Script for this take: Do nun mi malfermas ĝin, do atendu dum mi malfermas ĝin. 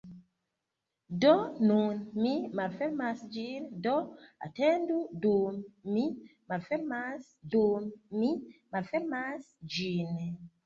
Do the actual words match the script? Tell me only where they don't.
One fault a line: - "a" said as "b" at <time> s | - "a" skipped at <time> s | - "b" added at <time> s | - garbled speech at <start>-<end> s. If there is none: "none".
- "dum mi malfermas" added at 7.6 s